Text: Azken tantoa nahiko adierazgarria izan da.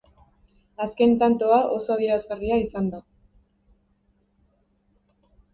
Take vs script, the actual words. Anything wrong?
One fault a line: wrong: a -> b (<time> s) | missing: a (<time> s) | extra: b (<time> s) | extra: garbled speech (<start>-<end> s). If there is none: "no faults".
wrong: nahiko -> oso (1.8 s)